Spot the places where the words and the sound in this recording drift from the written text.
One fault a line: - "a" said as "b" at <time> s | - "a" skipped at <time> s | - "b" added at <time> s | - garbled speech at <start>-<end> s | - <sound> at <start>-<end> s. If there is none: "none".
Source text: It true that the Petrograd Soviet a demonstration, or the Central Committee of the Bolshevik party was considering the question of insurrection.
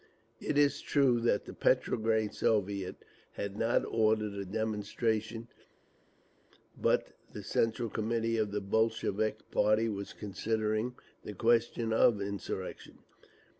- "is" added at 0.6 s
- "had not ordered" added at 3.3 s
- "or" said as "but" at 6.8 s